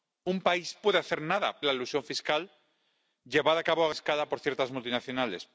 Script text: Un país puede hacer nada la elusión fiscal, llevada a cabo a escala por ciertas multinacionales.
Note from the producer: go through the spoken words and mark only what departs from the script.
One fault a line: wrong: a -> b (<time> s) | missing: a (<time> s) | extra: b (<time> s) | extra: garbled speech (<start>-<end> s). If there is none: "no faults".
no faults